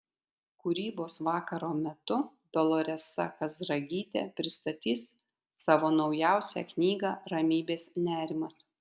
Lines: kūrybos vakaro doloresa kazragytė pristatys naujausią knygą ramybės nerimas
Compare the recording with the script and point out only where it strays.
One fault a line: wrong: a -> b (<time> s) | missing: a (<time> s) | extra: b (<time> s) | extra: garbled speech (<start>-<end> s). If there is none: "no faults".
extra: metu (1.8 s)
extra: savo (5.7 s)